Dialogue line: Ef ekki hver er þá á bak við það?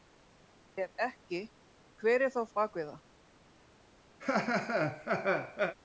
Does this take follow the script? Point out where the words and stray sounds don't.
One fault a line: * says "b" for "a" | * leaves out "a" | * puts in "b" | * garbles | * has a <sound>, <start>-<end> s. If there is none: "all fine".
* has a laugh, 4.2-5.7 s